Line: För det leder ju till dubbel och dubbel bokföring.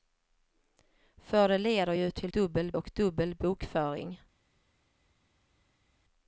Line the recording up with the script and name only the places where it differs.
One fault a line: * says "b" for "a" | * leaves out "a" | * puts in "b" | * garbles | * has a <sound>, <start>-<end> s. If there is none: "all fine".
all fine